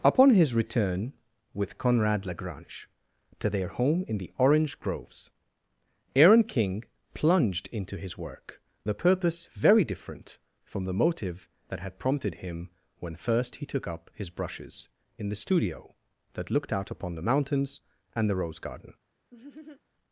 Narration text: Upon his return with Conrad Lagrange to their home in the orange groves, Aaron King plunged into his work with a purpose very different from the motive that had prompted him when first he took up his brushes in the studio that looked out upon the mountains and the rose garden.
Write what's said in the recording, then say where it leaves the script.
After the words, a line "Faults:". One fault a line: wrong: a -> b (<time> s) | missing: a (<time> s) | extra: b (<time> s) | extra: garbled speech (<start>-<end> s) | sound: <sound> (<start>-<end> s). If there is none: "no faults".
Upon his return with Conrad Lagrange to their home in the orange groves, Aaron King plunged into his work a purpose very different from the motive that had prompted him when first he took up his brushes in the studio that looked out upon the mountains and the rose garden.
Faults:
missing: with (8.6 s)
sound: laugh (19.3-19.8 s)